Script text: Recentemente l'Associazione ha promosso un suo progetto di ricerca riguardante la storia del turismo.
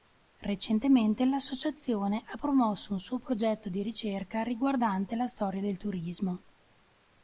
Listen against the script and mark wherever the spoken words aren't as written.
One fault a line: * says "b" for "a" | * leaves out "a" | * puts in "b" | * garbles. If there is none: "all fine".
all fine